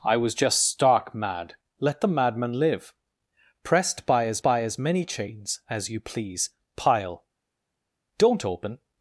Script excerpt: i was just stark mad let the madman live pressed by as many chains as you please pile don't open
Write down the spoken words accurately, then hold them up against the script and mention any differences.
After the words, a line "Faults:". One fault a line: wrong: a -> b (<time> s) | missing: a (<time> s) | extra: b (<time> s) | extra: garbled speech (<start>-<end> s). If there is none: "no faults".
i was just stark mad let the madman live pressed by as by as many chains as you please pile don't open
Faults:
extra: by as (4.4 s)